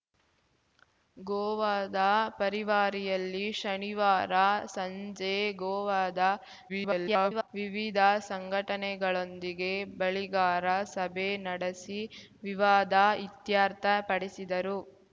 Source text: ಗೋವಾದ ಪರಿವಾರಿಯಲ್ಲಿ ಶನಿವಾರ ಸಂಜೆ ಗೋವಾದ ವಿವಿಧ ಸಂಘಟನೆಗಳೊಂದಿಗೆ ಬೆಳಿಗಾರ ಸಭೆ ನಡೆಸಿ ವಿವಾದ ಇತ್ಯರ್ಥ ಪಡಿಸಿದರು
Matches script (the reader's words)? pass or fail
fail